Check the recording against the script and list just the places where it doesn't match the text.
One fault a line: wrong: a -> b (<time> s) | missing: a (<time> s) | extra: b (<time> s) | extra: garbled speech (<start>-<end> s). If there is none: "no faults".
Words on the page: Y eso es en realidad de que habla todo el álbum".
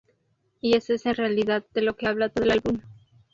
extra: lo (1.8 s)